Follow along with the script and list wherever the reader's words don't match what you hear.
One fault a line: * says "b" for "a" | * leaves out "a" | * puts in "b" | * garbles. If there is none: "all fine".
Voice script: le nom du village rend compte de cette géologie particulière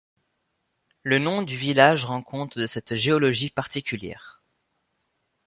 all fine